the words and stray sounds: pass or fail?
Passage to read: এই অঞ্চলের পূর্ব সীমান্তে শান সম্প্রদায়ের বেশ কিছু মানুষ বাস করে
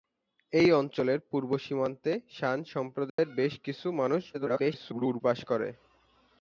fail